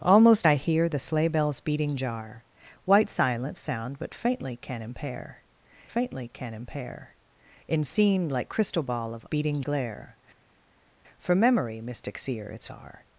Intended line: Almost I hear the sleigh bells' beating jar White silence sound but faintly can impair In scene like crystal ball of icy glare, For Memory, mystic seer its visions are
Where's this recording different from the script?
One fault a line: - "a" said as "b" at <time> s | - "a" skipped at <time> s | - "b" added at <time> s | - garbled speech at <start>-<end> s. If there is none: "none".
- "faintly can impair" added at 5.9 s
- "icy" said as "beating" at 9.2 s
- "visions" skipped at 12.7 s